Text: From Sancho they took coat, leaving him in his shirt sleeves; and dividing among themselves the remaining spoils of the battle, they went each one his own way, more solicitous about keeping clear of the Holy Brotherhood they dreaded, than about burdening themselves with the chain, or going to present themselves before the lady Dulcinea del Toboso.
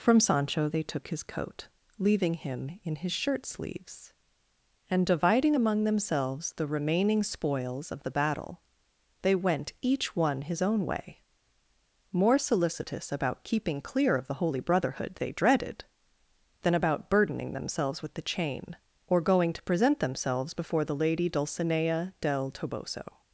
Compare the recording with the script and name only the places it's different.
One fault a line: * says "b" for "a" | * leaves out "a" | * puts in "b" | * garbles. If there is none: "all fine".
* puts in "his"